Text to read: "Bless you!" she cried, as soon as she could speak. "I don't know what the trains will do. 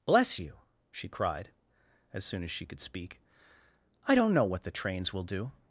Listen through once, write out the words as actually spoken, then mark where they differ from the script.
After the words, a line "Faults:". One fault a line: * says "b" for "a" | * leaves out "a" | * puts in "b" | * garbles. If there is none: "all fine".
"Bless you!" she cried, as soon as she could speak. "I don't know what the trains will do.
Faults:
all fine